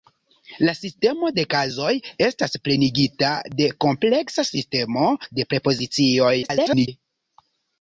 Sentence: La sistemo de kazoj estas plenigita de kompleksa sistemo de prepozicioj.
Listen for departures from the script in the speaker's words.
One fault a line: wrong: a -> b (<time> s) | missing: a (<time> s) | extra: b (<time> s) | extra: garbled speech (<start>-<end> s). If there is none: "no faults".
extra: garbled speech (6.4-6.9 s)